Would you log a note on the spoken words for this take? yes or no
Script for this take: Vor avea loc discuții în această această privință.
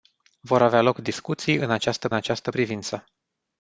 no